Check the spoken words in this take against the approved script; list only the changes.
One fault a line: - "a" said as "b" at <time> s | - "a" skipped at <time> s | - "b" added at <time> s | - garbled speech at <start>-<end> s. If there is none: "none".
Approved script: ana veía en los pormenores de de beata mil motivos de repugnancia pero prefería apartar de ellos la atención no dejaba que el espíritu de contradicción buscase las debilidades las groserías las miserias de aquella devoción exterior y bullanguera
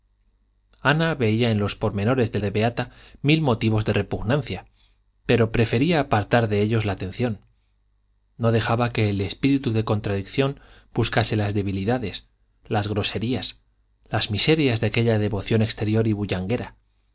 none